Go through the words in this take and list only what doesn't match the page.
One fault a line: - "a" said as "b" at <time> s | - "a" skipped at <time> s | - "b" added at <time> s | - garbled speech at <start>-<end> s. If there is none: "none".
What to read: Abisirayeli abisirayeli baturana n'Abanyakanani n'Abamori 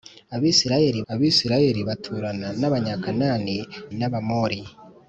none